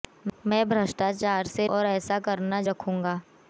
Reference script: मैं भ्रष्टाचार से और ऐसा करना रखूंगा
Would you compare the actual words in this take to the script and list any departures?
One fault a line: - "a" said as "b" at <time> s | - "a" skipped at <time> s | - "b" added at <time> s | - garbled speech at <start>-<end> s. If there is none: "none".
none